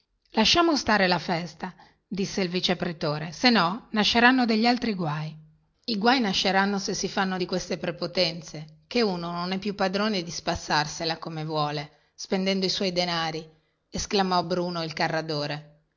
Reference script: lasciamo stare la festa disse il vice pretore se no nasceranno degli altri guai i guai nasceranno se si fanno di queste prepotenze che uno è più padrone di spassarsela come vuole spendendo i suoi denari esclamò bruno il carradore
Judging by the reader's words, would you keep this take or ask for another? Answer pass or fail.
fail